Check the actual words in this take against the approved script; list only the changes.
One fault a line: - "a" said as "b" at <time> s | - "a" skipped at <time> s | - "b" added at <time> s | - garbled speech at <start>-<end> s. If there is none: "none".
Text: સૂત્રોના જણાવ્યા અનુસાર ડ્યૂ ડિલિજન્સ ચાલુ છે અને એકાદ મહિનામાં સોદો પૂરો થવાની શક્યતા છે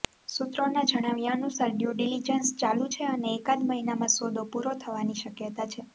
none